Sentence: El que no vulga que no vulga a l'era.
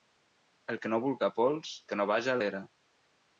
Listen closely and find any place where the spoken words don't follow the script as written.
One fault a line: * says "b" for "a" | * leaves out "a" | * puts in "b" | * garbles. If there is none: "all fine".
* puts in "pols"
* says "vaja" for "vulga"